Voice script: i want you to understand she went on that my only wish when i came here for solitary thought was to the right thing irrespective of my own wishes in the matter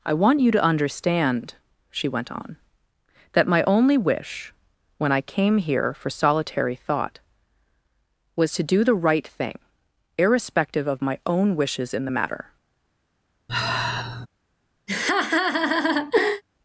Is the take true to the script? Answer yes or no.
no